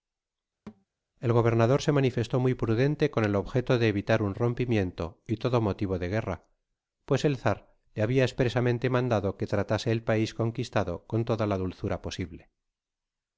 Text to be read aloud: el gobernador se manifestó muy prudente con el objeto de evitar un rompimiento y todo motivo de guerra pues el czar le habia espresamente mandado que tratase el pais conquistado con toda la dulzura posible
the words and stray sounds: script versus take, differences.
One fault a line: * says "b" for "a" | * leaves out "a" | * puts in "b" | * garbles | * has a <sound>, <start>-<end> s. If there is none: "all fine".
* has a thud, 0.7-0.9 s